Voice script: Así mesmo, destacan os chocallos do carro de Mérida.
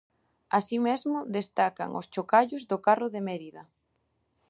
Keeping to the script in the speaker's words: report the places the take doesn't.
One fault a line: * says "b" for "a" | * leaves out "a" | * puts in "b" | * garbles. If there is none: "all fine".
all fine